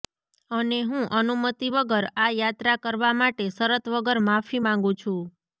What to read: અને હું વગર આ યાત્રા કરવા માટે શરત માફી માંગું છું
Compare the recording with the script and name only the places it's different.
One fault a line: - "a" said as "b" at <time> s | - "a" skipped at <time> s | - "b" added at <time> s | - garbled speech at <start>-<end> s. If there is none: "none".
- "અનુમતિ" added at 1.2 s
- "વગર" added at 3.9 s